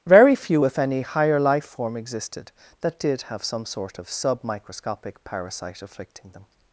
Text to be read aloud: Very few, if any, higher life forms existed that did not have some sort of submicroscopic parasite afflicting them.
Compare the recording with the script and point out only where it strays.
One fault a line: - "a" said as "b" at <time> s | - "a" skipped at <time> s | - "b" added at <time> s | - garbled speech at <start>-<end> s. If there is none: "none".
- "forms" said as "form" at 1.6 s
- "not" skipped at 3.2 s